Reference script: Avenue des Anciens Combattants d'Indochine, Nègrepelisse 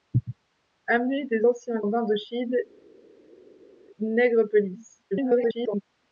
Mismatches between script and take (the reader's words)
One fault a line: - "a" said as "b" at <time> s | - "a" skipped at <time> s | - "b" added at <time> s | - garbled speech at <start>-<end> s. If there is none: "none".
- "Combattants" skipped at 1.8 s
- garbled speech at 5.1-5.8 s